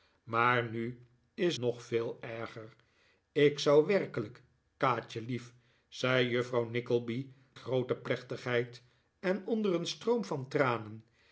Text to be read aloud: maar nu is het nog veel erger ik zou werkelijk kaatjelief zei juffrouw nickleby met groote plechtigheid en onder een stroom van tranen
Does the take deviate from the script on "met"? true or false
true